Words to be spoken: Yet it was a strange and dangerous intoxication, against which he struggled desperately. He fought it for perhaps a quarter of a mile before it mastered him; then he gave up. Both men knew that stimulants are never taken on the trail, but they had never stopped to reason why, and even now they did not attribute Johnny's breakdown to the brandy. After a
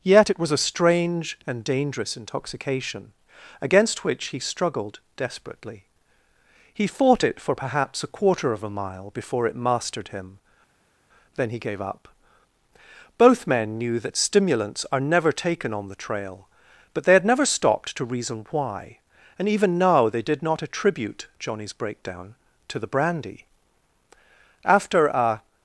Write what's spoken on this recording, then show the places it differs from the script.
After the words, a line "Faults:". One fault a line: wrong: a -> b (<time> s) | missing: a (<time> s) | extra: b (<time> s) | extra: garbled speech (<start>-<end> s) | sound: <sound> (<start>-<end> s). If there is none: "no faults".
Yet it was a strange and dangerous intoxication, against which he struggled desperately. He fought it for perhaps a quarter of a mile before it mastered him; then he gave up. Both men knew that stimulants are never taken on the trail, but they had never stopped to reason why, and even now they did not attribute Johnny's breakdown to the brandy. After a
Faults:
no faults